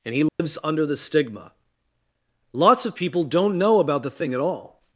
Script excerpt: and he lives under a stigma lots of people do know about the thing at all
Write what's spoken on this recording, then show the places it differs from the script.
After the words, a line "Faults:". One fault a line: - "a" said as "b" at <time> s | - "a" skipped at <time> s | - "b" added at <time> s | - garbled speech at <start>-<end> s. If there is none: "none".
and he lives under the stigma lots of people don't know about the thing at all
Faults:
- "a" said as "the" at 0.8 s
- "do" said as "don't" at 3.2 s